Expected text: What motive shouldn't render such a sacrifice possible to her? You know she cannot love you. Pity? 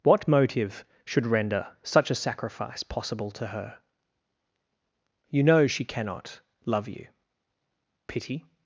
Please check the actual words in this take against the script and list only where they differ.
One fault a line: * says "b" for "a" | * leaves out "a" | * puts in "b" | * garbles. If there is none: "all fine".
* says "should" for "shouldn't"